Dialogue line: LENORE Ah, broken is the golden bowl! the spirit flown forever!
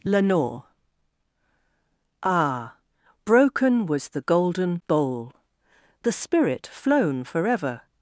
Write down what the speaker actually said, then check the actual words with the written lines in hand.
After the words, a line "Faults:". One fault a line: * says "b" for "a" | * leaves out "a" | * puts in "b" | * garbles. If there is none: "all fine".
LENORE Ah, broken was the golden bowl! the spirit flown forever!
Faults:
* says "was" for "is"